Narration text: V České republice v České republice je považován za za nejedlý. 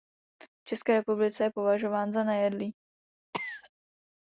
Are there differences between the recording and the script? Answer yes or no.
yes